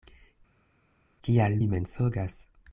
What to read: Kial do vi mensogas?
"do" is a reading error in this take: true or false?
true